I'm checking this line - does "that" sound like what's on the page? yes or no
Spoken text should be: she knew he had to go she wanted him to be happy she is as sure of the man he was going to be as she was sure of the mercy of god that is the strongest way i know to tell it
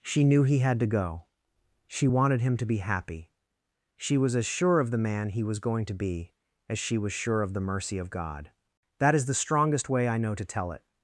yes